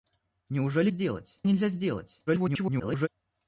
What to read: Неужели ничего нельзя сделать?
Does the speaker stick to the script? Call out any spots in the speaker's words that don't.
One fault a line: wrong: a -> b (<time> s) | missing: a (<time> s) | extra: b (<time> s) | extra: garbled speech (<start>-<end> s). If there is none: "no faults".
wrong: ничего -> сделать (0.9 s)
extra: garbled speech (2.3-3.1 s)